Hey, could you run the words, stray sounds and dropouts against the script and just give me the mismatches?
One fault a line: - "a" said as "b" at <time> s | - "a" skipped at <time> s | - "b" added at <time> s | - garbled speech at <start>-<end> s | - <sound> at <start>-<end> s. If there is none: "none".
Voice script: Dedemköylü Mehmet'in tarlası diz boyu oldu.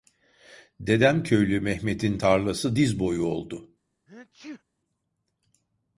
- sneeze at 4.1-4.6 s